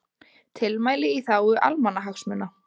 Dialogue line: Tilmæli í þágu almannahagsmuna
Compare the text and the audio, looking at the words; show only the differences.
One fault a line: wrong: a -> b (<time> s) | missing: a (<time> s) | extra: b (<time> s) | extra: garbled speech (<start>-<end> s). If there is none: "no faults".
no faults